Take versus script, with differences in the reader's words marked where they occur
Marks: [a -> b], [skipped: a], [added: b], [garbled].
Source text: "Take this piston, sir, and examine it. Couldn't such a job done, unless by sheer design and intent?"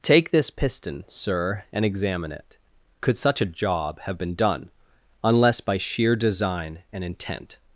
"Take this piston, sir, and examine it. [Couldn't -> Could] such a job [added: have been] done, unless by sheer design and intent?"